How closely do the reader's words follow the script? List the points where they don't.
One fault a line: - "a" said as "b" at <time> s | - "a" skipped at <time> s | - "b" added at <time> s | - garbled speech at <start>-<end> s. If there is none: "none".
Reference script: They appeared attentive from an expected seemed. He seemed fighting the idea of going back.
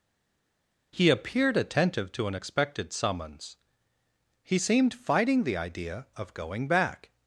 - "They" said as "He" at 0.9 s
- "from" said as "to" at 2.1 s
- "seemed" said as "summons" at 2.9 s